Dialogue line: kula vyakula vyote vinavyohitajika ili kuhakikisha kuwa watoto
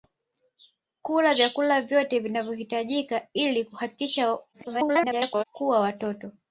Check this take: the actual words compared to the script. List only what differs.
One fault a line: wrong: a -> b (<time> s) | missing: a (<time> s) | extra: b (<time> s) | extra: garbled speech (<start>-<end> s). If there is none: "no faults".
extra: garbled speech (4.5-5.4 s)